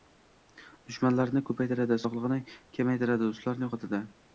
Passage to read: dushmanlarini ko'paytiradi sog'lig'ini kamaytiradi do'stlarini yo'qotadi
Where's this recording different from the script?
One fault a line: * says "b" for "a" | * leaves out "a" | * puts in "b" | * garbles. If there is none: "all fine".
all fine